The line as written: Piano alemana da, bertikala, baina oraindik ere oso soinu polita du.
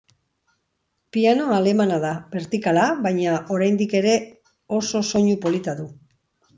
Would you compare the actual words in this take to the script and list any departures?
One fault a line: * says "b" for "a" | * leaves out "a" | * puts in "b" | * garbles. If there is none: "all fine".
all fine